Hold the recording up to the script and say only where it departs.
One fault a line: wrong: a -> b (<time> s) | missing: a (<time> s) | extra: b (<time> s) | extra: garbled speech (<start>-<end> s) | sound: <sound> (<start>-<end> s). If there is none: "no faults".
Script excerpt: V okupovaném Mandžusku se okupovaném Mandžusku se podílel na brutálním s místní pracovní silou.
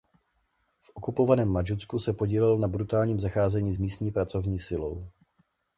missing: okupovaném Mandžusku se (2.1 s)
extra: zacházení (3.2 s)